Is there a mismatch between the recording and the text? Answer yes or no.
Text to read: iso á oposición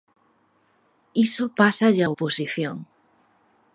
yes